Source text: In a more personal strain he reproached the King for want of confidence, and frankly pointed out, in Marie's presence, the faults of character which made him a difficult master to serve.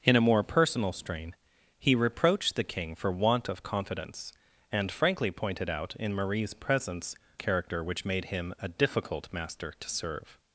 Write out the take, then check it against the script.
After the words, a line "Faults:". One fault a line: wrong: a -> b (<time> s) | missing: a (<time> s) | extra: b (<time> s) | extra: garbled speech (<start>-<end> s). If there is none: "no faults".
In a more personal strain he reproached the King for want of confidence, and frankly pointed out, in Marie's presence, character which made him a difficult master to serve.
Faults:
missing: the faults of (7.2 s)